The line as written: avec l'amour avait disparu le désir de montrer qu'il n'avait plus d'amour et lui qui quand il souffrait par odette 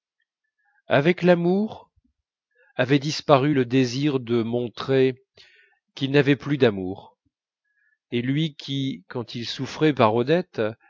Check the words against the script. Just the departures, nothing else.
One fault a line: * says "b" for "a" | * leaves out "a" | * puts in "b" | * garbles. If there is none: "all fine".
all fine